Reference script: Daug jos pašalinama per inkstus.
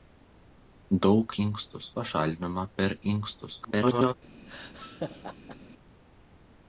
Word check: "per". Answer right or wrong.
right